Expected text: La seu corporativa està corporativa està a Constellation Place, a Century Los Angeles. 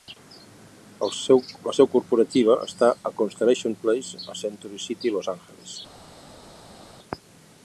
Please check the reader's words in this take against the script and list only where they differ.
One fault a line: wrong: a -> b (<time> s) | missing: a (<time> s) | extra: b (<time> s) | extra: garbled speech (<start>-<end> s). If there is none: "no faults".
missing: corporativa està (2.9 s)
extra: City (4.9 s)